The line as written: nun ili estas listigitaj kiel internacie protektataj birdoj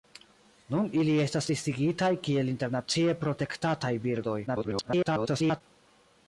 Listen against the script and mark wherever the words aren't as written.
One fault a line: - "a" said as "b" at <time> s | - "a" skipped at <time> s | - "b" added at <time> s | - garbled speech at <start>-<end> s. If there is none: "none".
- garbled speech at 4.5-5.6 s